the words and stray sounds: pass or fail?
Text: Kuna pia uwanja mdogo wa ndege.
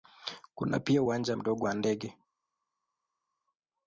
pass